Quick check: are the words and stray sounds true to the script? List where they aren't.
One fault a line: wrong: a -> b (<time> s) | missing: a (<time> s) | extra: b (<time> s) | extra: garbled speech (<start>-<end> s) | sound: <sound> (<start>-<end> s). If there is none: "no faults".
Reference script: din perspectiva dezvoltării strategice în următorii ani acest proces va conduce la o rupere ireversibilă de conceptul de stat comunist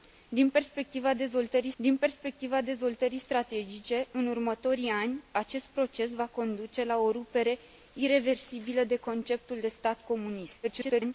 extra: din perspectiva dezvoltării (1.8 s)
extra: garbled speech (10.6-11.1 s)